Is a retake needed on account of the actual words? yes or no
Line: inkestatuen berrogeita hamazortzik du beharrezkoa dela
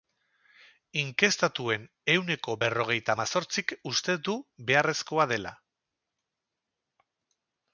yes